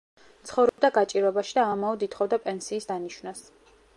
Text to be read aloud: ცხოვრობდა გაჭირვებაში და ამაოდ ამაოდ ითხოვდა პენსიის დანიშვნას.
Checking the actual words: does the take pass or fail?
fail